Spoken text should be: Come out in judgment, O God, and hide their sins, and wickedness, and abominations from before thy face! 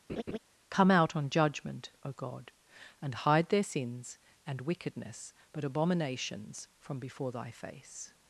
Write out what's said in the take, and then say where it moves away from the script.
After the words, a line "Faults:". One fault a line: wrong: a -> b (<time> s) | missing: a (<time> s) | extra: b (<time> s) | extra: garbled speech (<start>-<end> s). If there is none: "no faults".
Come out on judgment, O God, and hide their sins, and wickedness, but abominations from before thy face!
Faults:
wrong: in -> on (1.1 s)
wrong: and -> but (5.5 s)